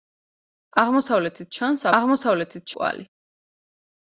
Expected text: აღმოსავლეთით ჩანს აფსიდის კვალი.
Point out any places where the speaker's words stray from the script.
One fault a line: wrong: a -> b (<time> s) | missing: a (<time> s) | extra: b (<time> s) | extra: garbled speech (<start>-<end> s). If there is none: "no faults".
wrong: აფსიდის -> აღმოსავლეთით (2.0 s)